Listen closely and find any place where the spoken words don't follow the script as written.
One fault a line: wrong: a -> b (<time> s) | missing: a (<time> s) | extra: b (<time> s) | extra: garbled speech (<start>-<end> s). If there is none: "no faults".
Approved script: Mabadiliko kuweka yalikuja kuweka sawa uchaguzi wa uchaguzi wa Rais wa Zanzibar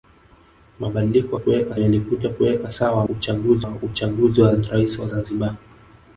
no faults